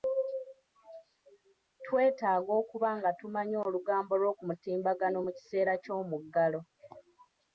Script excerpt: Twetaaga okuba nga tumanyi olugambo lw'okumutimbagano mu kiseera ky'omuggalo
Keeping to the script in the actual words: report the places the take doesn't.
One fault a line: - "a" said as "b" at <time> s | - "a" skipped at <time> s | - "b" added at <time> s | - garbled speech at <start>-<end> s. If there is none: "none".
none